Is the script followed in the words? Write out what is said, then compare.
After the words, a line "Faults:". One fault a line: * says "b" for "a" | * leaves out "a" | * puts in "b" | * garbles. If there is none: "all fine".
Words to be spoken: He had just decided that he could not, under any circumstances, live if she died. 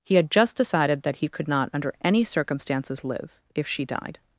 He had just decided that he could not, under any circumstances, live if she died.
Faults:
all fine